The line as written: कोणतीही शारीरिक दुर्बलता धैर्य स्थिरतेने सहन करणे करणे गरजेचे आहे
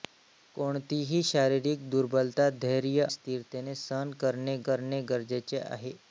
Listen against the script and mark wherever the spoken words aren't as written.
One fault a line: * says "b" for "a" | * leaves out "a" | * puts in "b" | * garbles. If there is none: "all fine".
all fine